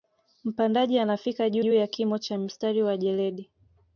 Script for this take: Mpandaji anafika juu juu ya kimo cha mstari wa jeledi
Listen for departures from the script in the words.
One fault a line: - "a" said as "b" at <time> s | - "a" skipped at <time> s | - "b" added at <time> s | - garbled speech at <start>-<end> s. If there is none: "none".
none